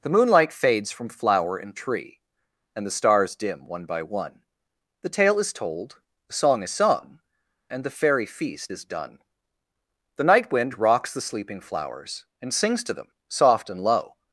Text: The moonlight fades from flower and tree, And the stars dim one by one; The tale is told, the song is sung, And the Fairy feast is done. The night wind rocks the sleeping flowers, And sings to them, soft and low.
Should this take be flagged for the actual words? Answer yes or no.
no